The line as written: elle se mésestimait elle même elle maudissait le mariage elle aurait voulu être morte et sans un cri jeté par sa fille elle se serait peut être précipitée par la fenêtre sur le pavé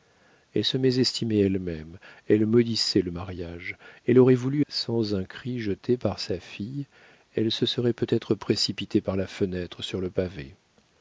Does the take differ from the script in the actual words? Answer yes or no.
yes